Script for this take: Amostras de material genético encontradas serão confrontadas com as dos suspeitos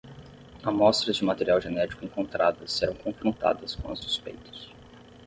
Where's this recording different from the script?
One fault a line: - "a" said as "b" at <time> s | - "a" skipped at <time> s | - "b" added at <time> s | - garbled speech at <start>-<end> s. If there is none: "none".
- "dos" skipped at 4.0 s